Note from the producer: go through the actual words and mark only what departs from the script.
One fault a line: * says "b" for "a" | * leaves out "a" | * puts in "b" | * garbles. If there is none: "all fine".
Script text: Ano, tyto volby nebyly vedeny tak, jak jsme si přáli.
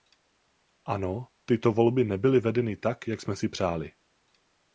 all fine